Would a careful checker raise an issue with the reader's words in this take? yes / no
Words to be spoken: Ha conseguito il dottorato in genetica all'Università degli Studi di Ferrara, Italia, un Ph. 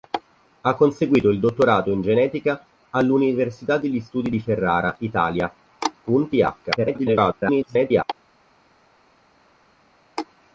yes